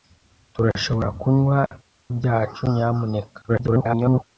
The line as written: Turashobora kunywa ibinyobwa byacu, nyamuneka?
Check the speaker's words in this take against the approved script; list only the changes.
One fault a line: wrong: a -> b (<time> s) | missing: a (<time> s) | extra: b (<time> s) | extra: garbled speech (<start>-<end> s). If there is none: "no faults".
missing: ibinyobwa (1.6 s)
extra: garbled speech (3.5-4.2 s)